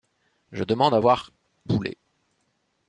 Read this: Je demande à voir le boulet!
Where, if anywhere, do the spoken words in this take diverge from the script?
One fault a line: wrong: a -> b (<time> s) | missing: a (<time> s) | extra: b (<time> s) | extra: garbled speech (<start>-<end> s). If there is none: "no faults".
missing: le (1.3 s)